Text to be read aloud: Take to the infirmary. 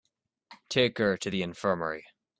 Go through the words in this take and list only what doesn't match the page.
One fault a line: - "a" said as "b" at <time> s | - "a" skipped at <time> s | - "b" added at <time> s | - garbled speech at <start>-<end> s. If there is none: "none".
- "her" added at 1.0 s